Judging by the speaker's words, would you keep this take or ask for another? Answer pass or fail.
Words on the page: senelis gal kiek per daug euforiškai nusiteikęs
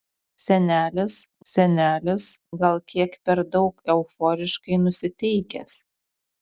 fail